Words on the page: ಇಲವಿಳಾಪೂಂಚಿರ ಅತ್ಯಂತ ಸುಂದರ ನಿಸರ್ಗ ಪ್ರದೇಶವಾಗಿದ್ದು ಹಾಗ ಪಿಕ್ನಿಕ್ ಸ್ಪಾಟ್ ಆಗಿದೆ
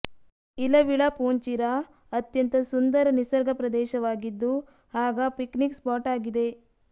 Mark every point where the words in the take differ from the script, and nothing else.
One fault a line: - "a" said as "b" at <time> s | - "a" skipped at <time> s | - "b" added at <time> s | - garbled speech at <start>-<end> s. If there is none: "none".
none